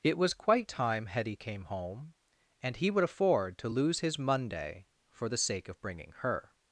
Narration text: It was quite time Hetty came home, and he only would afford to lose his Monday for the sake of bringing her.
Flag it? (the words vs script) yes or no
yes